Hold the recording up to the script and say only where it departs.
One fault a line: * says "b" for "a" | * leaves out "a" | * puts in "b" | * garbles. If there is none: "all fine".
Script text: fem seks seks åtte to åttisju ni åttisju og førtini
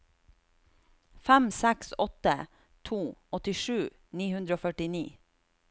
* leaves out "seks"
* says "hundre" for "åttisju"